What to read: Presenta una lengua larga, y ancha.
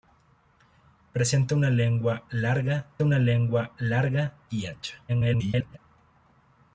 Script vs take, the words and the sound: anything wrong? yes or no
yes